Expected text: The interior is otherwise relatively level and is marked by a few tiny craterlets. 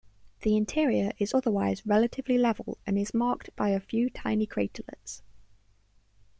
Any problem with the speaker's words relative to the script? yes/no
no